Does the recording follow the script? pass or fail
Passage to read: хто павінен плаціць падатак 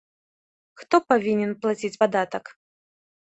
pass